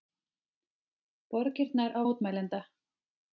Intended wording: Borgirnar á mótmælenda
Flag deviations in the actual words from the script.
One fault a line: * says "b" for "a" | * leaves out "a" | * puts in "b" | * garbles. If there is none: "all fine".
all fine